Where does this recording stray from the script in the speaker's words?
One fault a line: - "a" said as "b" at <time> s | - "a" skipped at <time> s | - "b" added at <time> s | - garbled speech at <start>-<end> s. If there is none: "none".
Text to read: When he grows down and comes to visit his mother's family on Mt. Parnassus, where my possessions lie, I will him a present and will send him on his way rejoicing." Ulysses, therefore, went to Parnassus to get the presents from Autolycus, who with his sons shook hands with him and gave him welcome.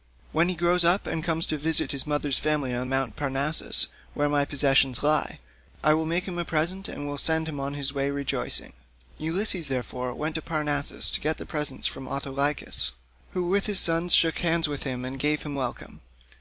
- "down" said as "up" at 0.8 s
- "make" added at 6.1 s